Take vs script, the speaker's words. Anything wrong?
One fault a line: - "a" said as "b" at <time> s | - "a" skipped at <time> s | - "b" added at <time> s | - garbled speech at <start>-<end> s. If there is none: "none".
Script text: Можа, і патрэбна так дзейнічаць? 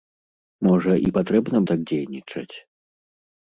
none